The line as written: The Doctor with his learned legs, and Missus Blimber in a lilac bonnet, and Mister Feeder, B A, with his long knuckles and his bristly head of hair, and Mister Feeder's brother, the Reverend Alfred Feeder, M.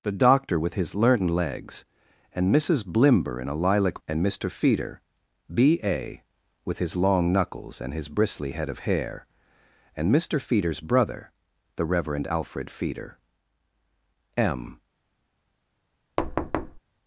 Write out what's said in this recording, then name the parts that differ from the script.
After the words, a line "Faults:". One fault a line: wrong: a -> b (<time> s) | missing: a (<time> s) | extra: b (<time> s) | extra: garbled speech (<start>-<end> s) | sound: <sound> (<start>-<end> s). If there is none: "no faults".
The Doctor with his learned legs, and Missus Blimber in a lilac and Mister Feeder, B A, with his long knuckles and his bristly head of hair, and Mister Feeder's brother, the Reverend Alfred Feeder, M.
Faults:
missing: bonnet (4.0 s)
sound: thud (16.2-16.8 s)